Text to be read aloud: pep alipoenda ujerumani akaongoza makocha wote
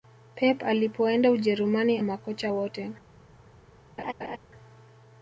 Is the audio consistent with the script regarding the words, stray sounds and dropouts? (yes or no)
no